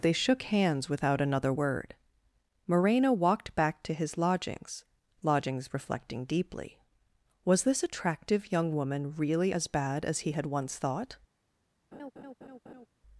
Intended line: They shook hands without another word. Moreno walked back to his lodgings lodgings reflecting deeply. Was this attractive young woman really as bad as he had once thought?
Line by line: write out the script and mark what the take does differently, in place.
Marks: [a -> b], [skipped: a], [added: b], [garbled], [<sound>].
They shook hands without another word. Moreno walked back to his lodgings lodgings reflecting deeply. Was this attractive young woman really as bad as he had once thought? [laugh]